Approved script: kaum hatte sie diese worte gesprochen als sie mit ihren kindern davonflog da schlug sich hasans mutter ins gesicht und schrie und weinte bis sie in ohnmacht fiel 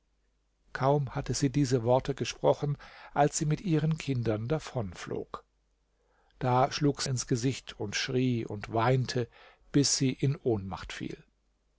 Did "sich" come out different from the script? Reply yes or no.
yes